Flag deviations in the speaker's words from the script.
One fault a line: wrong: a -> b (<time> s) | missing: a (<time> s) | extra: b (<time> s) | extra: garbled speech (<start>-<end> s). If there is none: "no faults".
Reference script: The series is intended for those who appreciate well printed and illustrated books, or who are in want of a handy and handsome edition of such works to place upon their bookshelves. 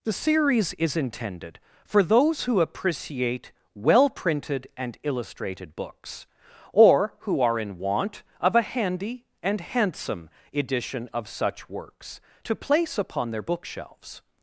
no faults